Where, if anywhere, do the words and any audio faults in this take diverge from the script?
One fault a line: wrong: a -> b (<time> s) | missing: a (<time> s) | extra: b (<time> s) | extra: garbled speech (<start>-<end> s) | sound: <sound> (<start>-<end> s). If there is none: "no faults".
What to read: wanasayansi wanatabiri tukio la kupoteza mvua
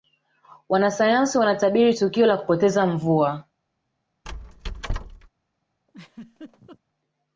sound: squeak (4.2-5.3 s)
sound: laugh (5.9-6.8 s)